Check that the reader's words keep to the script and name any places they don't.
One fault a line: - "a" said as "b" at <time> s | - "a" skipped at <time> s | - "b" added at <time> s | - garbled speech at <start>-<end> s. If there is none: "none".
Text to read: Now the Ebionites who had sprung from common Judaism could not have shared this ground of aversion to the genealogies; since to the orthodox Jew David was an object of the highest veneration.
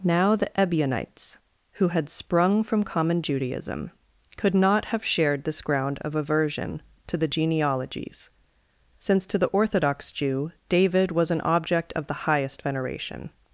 none